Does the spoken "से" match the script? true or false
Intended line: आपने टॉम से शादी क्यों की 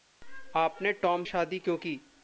false